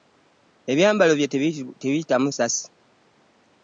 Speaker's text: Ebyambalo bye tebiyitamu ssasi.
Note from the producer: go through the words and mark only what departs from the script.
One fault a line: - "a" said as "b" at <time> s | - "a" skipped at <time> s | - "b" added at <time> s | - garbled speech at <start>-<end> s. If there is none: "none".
none